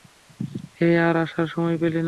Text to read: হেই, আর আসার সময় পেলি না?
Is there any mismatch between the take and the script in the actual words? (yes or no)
no